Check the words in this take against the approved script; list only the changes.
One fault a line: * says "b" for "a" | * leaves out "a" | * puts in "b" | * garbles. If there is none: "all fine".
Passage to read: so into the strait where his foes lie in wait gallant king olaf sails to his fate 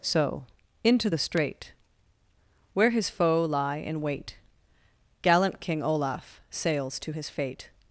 * says "foe" for "foes"